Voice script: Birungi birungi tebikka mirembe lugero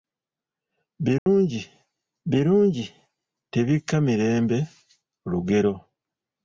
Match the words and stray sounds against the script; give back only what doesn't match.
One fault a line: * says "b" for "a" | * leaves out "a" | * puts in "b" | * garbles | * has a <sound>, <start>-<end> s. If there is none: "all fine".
* has a dropout, 1.2-1.3 s